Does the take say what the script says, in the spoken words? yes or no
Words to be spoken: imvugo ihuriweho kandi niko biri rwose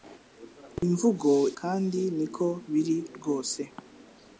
no